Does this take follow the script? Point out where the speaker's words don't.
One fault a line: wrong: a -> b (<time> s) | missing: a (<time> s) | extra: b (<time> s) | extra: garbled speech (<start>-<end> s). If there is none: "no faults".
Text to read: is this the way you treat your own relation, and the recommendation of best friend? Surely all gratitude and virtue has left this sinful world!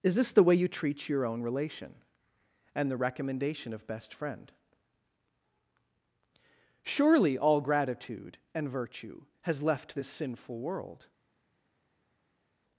no faults